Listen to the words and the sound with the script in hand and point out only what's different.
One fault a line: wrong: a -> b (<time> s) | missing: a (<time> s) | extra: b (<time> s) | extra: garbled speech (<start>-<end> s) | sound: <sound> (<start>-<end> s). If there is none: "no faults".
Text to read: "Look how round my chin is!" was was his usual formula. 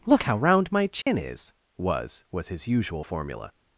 sound: dropout (1.0-1.1 s)